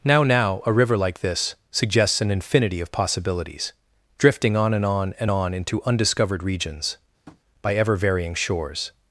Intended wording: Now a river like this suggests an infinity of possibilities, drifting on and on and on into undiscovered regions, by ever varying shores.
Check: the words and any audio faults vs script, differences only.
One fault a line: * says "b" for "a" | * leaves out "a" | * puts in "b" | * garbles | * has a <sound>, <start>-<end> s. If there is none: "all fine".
* puts in "now"
* has a tap, 7.3-7.4 s